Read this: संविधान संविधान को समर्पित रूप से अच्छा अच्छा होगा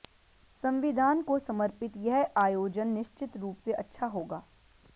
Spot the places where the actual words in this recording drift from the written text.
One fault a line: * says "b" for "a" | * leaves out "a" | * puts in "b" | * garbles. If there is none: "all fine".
* leaves out "संविधान"
* puts in "यह आयोजन निश्चित"
* leaves out "अच्छा"